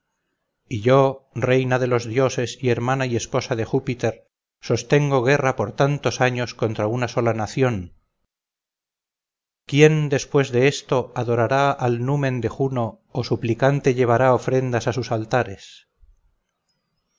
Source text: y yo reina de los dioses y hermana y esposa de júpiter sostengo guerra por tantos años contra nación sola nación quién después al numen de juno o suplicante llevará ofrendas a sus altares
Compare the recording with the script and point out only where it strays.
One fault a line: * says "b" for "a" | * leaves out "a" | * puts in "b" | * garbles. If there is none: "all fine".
* says "una" for "nación"
* puts in "de esto adorará"